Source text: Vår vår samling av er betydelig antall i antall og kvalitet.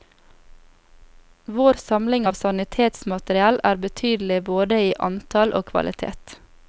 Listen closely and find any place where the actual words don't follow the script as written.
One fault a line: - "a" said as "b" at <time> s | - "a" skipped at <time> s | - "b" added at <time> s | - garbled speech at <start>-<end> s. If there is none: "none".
- "vår" skipped at 1.7 s
- "sanitetsmateriell" added at 2.4 s
- "antall" said as "både" at 4.5 s